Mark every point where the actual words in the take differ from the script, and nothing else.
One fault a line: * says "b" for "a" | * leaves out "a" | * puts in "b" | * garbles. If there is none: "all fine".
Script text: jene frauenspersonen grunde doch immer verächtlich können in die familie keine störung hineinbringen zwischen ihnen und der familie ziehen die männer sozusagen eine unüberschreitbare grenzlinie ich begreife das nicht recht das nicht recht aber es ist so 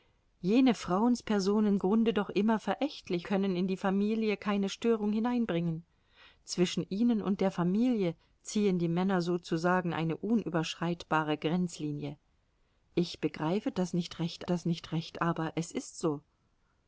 all fine